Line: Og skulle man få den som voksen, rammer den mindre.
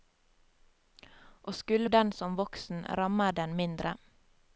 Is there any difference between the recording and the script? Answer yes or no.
yes